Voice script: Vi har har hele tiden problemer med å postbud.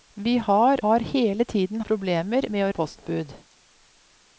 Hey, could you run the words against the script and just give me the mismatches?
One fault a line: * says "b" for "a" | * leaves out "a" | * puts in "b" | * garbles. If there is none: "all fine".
all fine